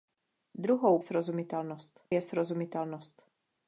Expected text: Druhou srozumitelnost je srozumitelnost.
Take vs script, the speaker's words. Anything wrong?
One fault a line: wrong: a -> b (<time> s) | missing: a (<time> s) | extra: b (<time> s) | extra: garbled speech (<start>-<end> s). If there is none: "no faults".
no faults